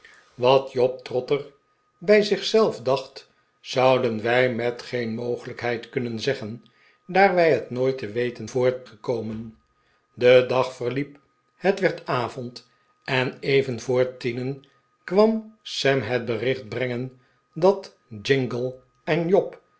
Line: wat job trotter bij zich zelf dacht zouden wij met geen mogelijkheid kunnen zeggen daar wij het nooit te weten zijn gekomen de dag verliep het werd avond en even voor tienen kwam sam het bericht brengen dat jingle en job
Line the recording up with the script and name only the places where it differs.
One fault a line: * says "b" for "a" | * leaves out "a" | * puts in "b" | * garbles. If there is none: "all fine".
* says "voor" for "zijn"